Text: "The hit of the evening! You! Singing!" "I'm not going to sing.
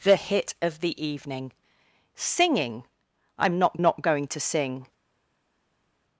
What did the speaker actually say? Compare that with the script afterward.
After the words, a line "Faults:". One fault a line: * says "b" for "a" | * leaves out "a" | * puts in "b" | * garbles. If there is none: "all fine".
"The hit of the evening! Singing!" "I'm not not going to sing.
Faults:
* leaves out "You"
* puts in "not"